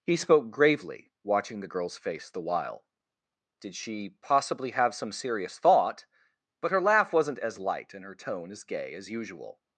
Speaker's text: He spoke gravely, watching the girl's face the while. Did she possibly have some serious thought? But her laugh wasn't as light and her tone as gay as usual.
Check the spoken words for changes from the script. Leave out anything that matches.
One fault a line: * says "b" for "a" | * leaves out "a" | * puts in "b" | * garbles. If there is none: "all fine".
all fine